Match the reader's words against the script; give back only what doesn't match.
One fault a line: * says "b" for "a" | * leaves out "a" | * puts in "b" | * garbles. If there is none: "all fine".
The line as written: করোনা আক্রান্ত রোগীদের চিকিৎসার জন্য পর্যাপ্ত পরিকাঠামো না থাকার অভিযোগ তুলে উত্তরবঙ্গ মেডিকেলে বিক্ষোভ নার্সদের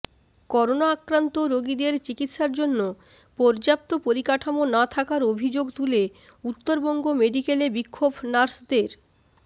all fine